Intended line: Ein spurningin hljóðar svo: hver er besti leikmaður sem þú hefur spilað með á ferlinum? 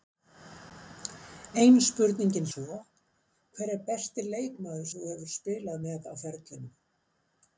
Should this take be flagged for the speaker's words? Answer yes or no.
yes